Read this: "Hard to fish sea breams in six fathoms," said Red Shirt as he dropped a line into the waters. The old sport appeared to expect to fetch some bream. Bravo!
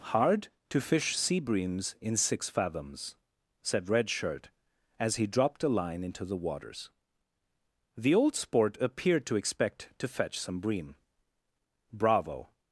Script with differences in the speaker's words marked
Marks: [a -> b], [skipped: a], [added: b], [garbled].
"Hard to fish sea breams in six fathoms," said Red Shirt as he dropped a line into the waters. The old sport appeared to expect to fetch some bream. Bravo!